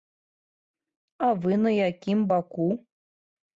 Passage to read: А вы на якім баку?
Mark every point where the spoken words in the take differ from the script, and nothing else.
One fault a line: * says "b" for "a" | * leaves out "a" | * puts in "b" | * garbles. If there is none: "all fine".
all fine